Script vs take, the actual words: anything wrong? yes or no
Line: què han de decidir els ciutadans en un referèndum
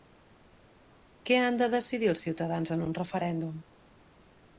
no